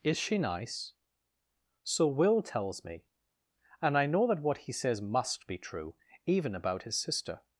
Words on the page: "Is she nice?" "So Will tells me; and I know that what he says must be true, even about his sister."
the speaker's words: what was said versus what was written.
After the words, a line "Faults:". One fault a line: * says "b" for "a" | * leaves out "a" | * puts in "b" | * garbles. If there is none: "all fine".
"Is she nice?" "So Will tells me; and I know that what he says must be true, even about his sister."
Faults:
all fine